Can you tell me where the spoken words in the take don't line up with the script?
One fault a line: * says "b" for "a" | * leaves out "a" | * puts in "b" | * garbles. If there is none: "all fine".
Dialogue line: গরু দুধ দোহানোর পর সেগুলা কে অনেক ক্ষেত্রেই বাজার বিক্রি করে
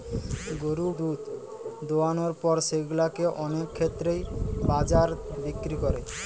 all fine